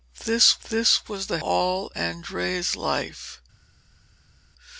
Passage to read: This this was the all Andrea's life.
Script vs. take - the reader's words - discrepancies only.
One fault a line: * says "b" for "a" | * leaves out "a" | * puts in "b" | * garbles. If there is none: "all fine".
all fine